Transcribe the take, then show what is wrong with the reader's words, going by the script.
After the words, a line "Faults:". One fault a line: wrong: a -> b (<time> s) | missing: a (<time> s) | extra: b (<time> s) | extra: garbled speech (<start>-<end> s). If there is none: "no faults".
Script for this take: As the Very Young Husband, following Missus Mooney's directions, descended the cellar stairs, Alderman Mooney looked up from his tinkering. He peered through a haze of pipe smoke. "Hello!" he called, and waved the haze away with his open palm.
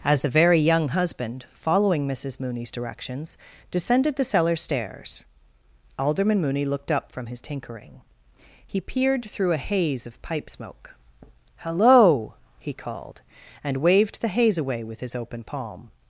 As the Very Young Husband, following Missus Mooney's directions, descended the cellar stairs, Alderman Mooney looked up from his tinkering. He peered through a haze of pipe smoke. "Hello!" he called, and waved the haze away with his open palm.
Faults:
no faults